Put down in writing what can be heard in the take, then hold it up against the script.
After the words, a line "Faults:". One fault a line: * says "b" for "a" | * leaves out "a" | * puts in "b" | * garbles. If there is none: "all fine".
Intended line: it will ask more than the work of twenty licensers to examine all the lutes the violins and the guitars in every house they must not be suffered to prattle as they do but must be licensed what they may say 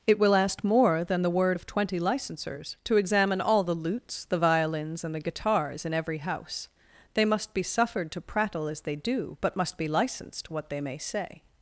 it will ask more than the word of twenty licensers to examine all the lutes the violins and the guitars in every house they must be suffered to prattle as they do but must be licensed what they may say
Faults:
* says "word" for "work"
* leaves out "not"